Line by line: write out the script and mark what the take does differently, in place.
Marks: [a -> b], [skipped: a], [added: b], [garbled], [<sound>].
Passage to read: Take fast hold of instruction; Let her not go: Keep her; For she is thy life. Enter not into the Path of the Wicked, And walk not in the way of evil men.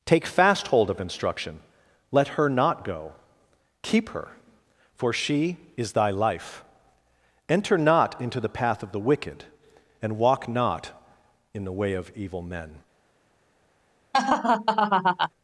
Take fast hold of instruction; Let her not go: Keep her; For she is thy life. Enter not into the Path of the Wicked, And walk not in the way of evil men. [laugh]